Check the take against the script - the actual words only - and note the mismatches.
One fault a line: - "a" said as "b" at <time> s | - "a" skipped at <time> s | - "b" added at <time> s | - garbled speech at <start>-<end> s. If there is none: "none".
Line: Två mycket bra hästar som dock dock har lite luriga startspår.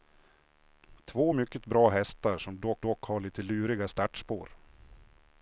none